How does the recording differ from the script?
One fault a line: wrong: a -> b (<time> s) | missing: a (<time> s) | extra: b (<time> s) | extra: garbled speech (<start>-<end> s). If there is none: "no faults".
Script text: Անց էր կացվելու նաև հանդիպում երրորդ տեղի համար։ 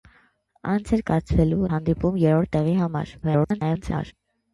missing: նաև (1.7 s)
extra: garbled speech (3.2-4.1 s)